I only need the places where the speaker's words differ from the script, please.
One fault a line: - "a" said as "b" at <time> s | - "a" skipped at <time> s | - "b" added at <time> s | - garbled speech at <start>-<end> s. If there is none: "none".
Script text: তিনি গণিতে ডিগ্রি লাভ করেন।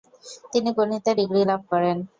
none